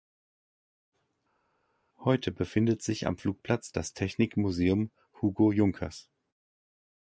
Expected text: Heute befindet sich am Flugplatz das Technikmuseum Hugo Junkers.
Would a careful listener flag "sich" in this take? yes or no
no